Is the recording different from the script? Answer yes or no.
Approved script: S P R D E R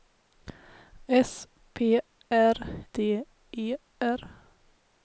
no